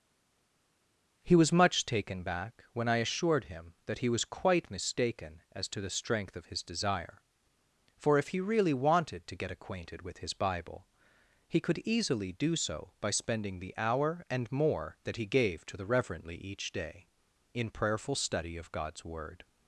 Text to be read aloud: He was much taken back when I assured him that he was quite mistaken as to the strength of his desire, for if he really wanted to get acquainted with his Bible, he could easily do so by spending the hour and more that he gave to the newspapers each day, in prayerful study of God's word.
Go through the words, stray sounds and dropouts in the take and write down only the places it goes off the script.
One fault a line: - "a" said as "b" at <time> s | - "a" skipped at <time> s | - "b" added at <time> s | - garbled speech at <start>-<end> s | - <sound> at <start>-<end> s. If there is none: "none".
- "newspapers" said as "reverently" at 15.9 s